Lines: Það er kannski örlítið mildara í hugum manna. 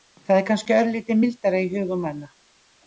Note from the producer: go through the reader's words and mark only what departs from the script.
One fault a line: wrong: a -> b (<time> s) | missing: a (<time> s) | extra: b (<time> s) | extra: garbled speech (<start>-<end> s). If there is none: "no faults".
no faults